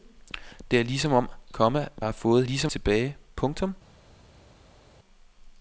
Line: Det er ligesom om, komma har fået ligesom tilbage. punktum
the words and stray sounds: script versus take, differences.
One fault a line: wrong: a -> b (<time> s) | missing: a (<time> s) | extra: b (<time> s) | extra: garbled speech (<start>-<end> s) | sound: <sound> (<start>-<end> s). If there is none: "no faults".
no faults